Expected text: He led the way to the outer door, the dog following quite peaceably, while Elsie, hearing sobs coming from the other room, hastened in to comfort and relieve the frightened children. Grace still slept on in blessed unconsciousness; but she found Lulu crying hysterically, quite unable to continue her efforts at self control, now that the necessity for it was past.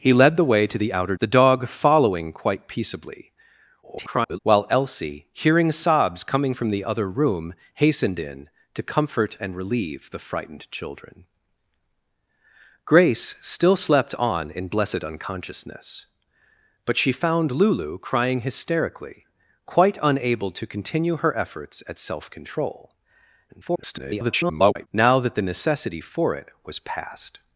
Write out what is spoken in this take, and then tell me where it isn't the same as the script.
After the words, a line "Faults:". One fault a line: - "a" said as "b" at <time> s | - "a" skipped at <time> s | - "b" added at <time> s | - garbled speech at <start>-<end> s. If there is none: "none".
He led the way to the outer the dog following quite peaceably, [garbled] while Elsie, hearing sobs coming from the other room, hastened in to comfort and relieve the frightened children. Grace still slept on in blessed unconsciousness; but she found Lulu crying hysterically, quite unable to continue her efforts at self control, [garbled] now that the necessity for it was past.
Faults:
- "door" skipped at 1.1 s
- garbled speech at 3.8-4.4 s
- garbled speech at 23.5-24.9 s